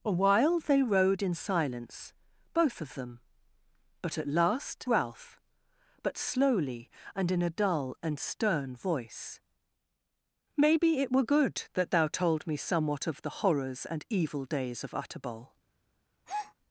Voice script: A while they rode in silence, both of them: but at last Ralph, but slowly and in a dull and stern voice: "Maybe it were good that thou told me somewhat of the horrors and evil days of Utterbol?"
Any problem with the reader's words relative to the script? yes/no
no